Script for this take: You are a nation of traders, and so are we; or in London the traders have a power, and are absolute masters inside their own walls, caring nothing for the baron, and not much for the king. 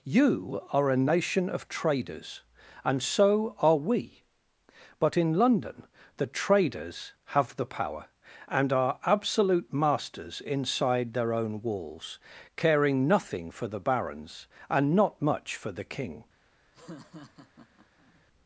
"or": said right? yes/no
no